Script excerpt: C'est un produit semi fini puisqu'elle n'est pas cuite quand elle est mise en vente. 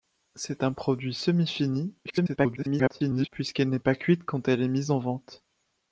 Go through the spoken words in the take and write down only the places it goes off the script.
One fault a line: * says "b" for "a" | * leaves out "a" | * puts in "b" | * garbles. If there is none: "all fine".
* garbles